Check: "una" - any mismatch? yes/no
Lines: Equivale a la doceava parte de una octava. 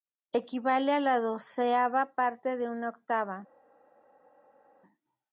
no